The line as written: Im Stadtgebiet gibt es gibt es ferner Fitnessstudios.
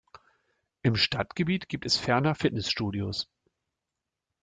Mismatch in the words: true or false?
true